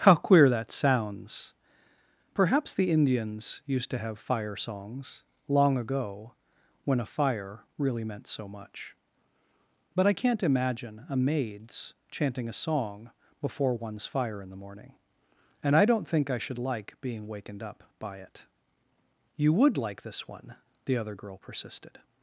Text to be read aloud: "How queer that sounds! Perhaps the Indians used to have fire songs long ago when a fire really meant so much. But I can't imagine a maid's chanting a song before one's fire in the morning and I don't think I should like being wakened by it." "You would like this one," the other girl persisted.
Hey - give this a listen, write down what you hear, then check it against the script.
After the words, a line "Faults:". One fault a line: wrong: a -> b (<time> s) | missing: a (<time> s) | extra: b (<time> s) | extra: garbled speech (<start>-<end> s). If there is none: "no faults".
"How queer that sounds! Perhaps the Indians used to have fire songs long ago when a fire really meant so much. But I can't imagine a maid's chanting a song before one's fire in the morning and I don't think I should like being wakened up by it." "You would like this one," the other girl persisted.
Faults:
extra: up (17.6 s)